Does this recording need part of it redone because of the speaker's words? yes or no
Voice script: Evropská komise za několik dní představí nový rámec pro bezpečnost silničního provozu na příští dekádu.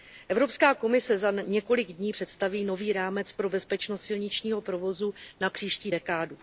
no